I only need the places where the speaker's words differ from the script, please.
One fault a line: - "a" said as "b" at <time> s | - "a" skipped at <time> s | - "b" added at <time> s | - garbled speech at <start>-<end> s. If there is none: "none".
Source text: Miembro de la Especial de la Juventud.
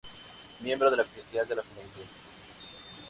none